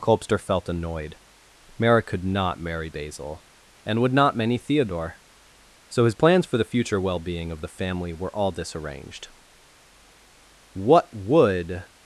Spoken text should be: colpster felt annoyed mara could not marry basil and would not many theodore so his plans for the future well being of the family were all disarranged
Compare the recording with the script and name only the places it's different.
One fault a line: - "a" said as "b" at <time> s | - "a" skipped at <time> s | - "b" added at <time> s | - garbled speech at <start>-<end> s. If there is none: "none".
- "what would" added at 10.7 s